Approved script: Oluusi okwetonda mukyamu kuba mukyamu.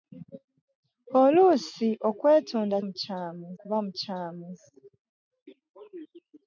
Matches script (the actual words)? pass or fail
pass